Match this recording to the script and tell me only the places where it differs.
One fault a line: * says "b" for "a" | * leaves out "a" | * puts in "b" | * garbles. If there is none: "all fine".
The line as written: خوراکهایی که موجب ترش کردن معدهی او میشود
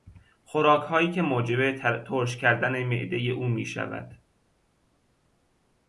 all fine